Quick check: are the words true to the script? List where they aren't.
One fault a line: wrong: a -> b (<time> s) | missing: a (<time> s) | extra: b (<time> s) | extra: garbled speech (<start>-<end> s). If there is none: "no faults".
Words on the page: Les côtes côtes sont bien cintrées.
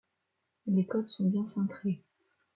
missing: côtes (1.1 s)